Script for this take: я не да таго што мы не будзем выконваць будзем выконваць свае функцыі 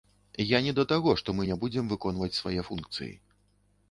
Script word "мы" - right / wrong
right